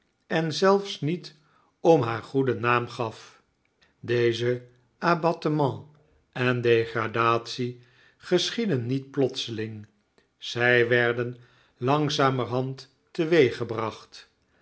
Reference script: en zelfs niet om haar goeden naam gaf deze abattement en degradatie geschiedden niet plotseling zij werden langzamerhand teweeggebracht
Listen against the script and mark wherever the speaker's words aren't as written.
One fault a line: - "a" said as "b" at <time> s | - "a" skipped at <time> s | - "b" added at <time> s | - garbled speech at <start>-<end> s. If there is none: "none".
none